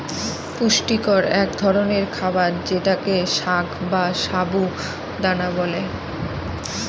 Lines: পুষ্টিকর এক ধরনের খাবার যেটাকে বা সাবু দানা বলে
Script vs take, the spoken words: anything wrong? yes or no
yes